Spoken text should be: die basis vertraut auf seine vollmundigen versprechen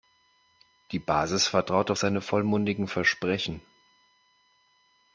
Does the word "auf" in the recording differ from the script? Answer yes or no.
no